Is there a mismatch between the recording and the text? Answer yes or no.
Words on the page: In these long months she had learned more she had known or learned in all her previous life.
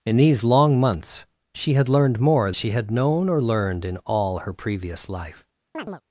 no